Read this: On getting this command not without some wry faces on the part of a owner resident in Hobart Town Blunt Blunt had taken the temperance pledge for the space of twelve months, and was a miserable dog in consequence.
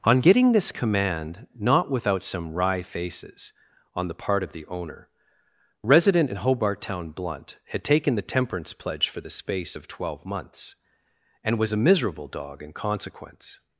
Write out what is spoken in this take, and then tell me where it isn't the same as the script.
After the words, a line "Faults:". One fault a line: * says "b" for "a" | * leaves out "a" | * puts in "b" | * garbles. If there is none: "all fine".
On getting this command not without some wry faces on the part of the owner resident in Hobart Town Blunt had taken the temperance pledge for the space of twelve months, and was a miserable dog in consequence.
Faults:
* says "the" for "a"
* leaves out "Blunt"